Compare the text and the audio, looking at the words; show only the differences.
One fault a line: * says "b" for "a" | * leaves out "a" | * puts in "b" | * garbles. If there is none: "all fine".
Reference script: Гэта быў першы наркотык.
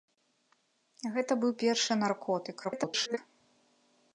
* garbles